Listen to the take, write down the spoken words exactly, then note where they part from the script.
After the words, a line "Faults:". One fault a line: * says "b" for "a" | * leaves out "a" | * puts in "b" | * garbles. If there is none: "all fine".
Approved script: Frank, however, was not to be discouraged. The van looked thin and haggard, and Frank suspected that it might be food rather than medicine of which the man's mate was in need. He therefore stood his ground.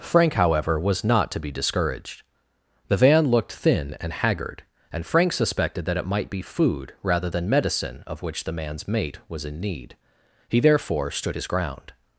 Frank, however, was not to be discouraged. The van looked thin and haggard, and Frank suspected that it might be food rather than medicine of which the man's mate was in need. He therefore stood his ground.
Faults:
all fine